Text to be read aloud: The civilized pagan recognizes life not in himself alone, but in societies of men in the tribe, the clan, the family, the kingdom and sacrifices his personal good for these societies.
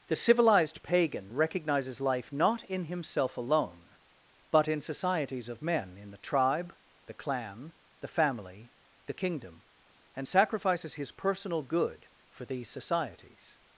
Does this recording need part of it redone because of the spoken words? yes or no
no